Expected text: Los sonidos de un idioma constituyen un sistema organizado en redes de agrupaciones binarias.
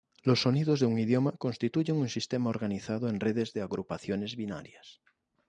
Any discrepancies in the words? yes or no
no